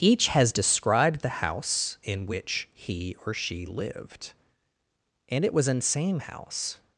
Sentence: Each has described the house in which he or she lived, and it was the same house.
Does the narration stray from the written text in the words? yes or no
yes